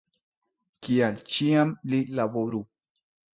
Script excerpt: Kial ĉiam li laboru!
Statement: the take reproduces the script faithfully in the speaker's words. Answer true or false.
true